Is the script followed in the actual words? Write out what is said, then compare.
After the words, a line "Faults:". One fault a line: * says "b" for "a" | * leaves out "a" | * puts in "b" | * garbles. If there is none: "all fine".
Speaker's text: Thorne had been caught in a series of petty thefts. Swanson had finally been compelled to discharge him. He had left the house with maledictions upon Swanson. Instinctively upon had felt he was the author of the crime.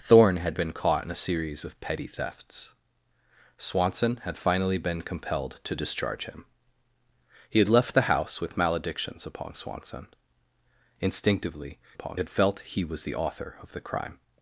Thorne had been caught in a series of petty thefts. Swanson had finally been compelled to discharge him. He had left the house with maledictions upon Swanson. Instinctively upon had felt he was the author of the crime.
Faults:
all fine